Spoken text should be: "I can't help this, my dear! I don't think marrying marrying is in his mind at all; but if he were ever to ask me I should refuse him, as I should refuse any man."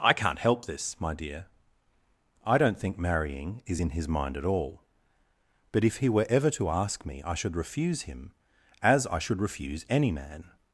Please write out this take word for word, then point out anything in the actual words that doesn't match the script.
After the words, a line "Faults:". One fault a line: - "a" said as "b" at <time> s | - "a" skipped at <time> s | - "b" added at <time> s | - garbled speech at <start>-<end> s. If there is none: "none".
"I can't help this, my dear! I don't think marrying is in his mind at all; but if he were ever to ask me I should refuse him, as I should refuse any man."
Faults:
- "marrying" skipped at 3.6 s